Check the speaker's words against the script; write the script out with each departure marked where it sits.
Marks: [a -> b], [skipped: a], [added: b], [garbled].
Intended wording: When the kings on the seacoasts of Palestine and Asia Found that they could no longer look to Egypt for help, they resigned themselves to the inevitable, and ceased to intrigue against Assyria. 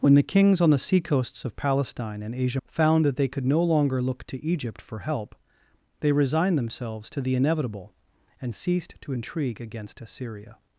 When the kings on the seacoasts of Palestine and Asia Found that they could no longer look to Egypt for help, they resigned themselves to the inevitable, and ceased to intrigue against Assyria.